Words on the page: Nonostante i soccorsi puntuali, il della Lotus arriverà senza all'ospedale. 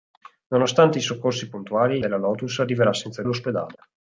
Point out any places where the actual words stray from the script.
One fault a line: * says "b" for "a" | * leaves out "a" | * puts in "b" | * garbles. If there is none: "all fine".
all fine